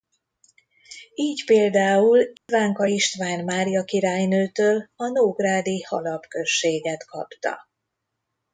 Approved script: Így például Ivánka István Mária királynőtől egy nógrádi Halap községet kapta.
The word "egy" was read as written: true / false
false